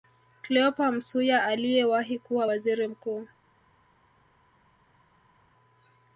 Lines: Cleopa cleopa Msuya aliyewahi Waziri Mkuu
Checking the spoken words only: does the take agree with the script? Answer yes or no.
no